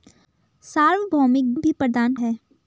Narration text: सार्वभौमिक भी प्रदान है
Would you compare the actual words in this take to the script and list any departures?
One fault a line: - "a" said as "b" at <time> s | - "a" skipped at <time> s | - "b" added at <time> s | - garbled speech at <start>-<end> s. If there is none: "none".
none